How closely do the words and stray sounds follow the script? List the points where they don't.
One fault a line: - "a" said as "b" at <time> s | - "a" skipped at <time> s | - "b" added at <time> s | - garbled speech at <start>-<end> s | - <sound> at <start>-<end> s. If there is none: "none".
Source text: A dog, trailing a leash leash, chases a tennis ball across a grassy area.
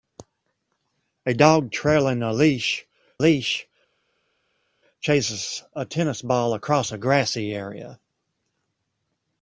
none